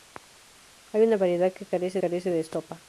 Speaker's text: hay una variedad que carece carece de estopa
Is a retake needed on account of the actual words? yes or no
no